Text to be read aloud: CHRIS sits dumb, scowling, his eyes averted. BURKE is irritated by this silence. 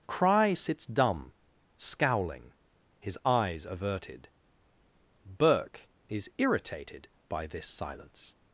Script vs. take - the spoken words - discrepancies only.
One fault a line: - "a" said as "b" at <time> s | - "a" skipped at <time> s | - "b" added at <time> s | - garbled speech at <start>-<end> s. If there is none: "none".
- "CHRIS" said as "Cry" at 0.1 s